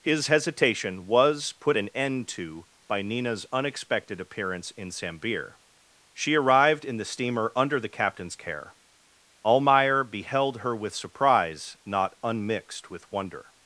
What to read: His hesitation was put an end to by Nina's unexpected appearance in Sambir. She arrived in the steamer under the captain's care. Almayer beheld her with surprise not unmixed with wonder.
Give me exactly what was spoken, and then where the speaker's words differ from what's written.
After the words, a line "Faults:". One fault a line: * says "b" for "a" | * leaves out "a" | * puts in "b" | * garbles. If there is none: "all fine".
His hesitation was put an end to by Nina's unexpected appearance in Sambir. She arrived in the steamer under the captain's care. Almayer beheld her with surprise not unmixed with wonder.
Faults:
all fine